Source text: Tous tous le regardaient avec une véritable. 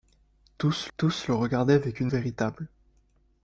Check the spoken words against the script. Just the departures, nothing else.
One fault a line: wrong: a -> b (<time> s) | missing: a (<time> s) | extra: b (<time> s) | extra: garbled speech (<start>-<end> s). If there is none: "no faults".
no faults